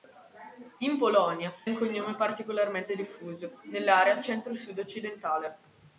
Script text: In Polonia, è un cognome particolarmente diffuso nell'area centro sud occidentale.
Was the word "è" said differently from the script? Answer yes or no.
yes